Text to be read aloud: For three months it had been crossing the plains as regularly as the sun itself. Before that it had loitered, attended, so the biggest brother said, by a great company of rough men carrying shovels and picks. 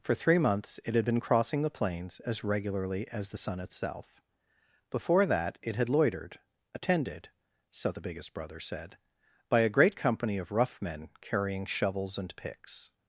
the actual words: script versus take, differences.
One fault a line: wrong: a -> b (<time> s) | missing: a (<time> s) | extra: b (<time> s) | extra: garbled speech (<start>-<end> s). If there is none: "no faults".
no faults